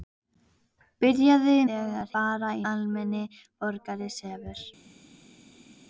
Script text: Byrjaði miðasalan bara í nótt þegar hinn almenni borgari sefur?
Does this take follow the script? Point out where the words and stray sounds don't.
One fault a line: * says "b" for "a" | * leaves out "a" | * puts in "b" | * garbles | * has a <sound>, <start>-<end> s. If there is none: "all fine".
* says "þegar" for "miðasalan"
* leaves out "nótt þegar hinn"